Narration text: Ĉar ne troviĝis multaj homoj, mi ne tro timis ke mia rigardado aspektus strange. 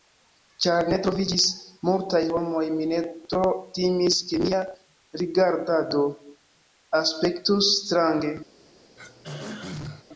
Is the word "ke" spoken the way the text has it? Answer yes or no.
yes